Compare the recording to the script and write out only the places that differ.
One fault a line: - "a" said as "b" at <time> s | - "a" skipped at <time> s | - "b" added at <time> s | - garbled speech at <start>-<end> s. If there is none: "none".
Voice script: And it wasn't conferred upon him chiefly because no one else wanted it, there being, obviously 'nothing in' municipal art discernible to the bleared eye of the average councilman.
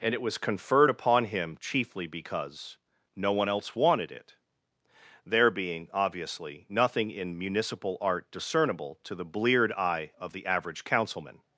- "wasn't" said as "was" at 0.2 s